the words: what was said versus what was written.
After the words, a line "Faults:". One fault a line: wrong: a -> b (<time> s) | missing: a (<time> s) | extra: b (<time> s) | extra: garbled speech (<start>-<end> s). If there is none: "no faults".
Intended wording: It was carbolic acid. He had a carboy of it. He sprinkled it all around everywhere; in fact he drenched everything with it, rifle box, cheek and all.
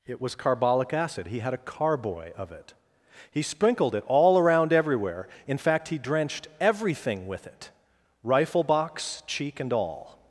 It was carbolic acid. He had a carboy of it. He sprinkled it all around everywhere; in fact he drenched everything with it, rifle box, cheek and all.
Faults:
no faults